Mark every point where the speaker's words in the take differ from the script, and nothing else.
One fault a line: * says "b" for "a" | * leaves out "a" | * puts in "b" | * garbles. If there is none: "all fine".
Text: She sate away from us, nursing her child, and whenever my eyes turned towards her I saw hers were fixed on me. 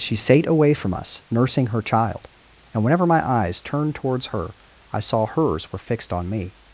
all fine